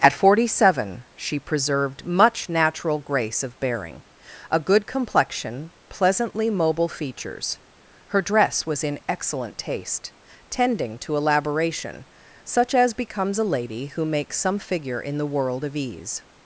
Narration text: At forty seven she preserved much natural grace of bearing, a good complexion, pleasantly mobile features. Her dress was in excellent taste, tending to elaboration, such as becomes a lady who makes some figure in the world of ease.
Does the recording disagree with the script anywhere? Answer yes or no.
no